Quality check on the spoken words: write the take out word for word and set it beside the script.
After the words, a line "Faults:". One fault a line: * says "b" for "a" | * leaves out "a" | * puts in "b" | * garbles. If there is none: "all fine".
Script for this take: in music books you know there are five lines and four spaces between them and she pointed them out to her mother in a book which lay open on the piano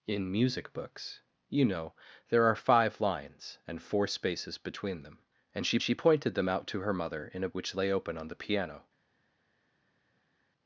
in music books you know there are five lines and four spaces between them and she she pointed them out to her mother in a which lay open on the piano
Faults:
* puts in "she"
* leaves out "book"